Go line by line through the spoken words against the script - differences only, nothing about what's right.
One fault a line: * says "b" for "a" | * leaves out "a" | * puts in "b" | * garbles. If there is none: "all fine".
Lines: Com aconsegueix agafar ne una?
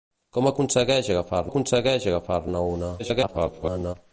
* puts in "aconsegueix agafar"
* garbles